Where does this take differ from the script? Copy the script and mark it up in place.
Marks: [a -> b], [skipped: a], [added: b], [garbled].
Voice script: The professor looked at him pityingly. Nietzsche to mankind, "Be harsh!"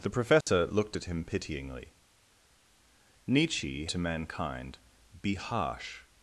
The professor looked at him pityingly. Nietzsche to mankind, "Be harsh!"